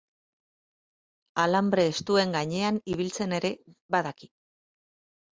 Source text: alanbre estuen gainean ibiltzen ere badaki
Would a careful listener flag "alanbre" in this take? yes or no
no